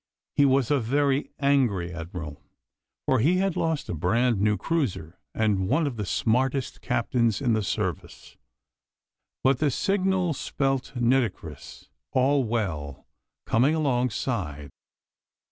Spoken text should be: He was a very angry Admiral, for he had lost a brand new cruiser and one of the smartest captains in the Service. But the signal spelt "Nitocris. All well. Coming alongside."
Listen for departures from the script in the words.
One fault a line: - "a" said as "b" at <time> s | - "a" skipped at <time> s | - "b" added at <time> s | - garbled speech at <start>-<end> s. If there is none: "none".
none